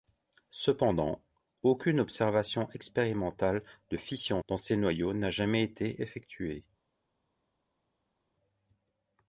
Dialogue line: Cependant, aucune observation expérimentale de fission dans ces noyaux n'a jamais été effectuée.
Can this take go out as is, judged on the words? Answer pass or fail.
pass